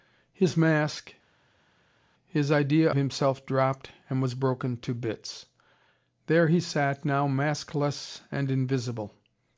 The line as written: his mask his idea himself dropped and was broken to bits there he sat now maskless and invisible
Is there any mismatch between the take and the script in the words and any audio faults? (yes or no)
no